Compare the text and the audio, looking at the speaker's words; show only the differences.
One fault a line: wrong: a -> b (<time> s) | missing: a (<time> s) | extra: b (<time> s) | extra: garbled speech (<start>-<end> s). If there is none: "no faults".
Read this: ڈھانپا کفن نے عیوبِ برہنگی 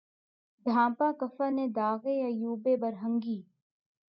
extra: داغِ (1.8 s)